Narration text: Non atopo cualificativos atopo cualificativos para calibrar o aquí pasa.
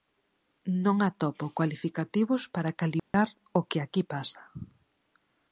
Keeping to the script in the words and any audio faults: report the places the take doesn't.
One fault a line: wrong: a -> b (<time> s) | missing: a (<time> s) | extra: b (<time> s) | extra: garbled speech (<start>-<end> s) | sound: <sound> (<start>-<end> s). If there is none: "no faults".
missing: atopo cualificativos (2.4 s)
sound: dropout (3.0-3.1 s)
extra: que (3.7 s)